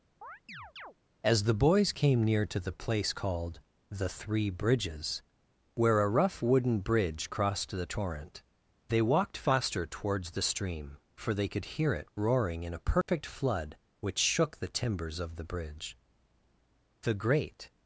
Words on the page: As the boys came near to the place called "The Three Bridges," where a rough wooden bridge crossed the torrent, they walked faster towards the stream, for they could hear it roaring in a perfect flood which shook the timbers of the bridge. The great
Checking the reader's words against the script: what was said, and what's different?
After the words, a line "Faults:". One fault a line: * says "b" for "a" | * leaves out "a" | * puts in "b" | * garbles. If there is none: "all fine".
As the boys came near to the place called "The Three Bridges," where a rough wooden bridge crossed the torrent, they walked faster towards the stream, for they could hear it roaring in a perfect flood which shook the timbers of the bridge. The great
Faults:
all fine